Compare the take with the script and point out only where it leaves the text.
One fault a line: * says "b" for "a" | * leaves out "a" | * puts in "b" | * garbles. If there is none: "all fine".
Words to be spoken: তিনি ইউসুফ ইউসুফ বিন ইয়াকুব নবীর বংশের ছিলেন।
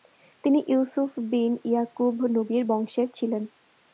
* leaves out "ইউসুফ"